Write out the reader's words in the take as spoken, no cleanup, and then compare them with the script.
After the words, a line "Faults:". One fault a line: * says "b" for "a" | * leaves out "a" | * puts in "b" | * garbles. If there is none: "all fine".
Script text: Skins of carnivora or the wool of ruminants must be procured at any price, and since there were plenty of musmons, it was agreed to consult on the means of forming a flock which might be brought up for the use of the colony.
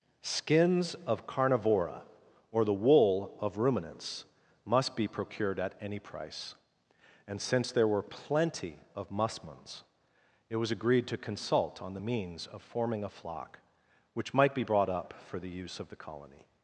Skins of carnivora or the wool of ruminants must be procured at any price, and since there were plenty of musmons, it was agreed to consult on the means of forming a flock which might be brought up for the use of the colony.
Faults:
all fine